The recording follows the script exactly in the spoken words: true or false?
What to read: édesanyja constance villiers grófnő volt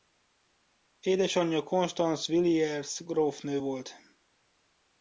true